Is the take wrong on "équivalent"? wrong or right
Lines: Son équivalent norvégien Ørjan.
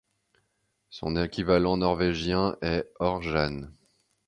right